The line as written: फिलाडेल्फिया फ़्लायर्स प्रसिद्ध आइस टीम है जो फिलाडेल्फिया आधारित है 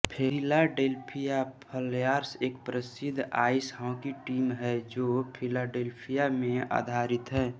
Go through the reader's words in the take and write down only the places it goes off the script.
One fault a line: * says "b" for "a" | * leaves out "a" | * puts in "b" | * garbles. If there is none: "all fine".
* puts in "एक"
* puts in "हॉकी"
* puts in "में"